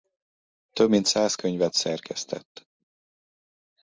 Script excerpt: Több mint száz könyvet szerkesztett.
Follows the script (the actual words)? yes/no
yes